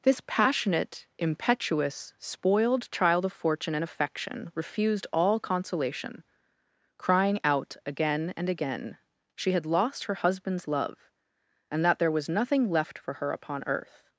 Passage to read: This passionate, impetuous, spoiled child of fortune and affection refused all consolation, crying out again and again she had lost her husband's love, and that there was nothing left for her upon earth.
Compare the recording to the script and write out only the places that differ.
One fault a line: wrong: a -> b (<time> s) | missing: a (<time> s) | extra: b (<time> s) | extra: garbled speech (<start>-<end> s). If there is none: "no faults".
no faults